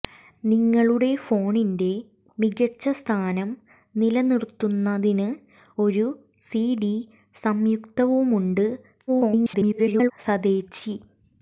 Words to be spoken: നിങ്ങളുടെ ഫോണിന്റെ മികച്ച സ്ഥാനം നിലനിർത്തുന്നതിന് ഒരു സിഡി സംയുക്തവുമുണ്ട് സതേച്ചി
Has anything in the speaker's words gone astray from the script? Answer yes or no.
yes